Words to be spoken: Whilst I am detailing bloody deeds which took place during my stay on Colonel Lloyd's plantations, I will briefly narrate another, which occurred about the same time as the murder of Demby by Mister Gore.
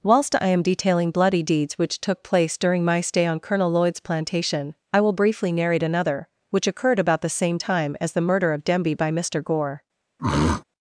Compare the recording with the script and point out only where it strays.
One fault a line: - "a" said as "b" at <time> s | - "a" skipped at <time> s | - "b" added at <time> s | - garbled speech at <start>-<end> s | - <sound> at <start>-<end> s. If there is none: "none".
- "plantations" said as "plantation" at 4.0 s
- throat clearing at 10.2-10.6 s